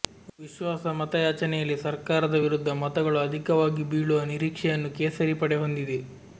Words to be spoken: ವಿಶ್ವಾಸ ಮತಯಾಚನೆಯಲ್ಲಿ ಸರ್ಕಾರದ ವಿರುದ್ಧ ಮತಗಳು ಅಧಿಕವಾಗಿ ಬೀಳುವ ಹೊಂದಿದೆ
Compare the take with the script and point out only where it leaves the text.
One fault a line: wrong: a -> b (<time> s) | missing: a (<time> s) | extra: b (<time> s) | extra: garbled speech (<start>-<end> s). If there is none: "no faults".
extra: ನಿರೀಕ್ಷೆಯನ್ನು ಕೇಸರಿ ಪಡೆ (4.3 s)